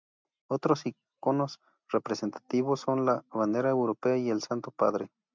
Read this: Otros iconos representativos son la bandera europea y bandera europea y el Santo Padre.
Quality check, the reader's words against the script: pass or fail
fail